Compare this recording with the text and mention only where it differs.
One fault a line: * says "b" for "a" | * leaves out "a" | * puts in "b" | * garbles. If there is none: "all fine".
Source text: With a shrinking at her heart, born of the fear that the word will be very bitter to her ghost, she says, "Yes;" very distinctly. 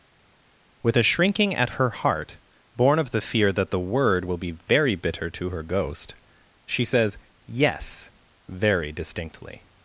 all fine